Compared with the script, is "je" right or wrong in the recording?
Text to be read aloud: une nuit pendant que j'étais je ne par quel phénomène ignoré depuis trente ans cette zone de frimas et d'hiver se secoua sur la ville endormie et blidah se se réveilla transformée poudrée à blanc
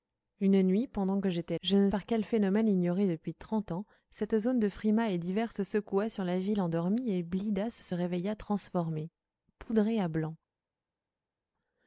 right